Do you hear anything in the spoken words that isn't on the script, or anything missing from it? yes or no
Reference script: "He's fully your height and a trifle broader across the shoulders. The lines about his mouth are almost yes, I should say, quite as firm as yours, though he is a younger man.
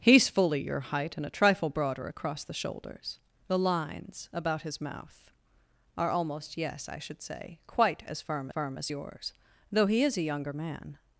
yes